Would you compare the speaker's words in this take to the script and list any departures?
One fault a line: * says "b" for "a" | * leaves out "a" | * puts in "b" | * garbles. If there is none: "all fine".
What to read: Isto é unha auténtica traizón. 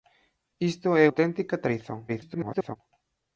* leaves out "unha"
* garbles